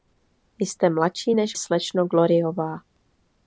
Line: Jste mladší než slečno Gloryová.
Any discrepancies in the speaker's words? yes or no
no